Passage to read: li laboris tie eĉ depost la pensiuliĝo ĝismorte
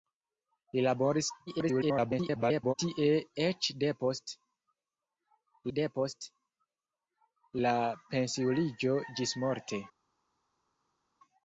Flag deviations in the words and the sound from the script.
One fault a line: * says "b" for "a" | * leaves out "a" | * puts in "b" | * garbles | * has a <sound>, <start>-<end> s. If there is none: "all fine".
* garbles
* puts in "depost"